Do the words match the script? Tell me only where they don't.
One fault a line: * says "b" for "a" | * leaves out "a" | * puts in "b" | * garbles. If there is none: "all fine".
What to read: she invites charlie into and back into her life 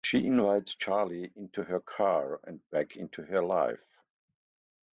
* puts in "her car"